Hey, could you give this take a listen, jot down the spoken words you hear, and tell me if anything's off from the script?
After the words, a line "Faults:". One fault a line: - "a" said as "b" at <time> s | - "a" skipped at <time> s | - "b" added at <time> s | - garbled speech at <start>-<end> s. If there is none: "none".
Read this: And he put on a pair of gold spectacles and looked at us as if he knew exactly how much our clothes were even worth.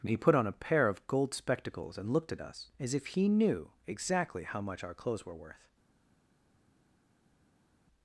And he put on a pair of gold spectacles and looked at us as if he knew exactly how much our clothes were worth.
Faults:
- "even" skipped at 5.4 s